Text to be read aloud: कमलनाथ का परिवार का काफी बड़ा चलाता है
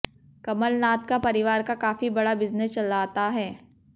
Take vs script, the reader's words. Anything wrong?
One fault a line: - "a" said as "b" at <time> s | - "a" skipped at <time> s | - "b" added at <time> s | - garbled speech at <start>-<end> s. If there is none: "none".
- "बिजनेस" added at 2.4 s